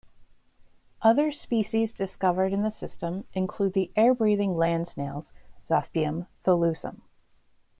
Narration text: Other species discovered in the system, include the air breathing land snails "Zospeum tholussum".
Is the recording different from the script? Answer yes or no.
no